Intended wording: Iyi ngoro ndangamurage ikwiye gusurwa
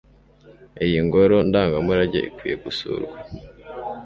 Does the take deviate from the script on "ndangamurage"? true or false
false